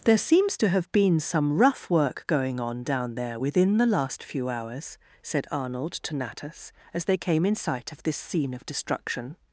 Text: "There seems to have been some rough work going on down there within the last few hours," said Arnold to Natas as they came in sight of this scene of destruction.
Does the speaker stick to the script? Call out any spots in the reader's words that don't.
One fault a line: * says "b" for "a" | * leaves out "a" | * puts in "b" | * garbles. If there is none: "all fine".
all fine